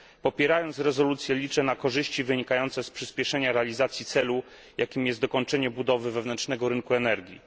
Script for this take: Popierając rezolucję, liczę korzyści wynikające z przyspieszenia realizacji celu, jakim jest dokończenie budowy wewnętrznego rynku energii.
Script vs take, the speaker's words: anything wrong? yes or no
yes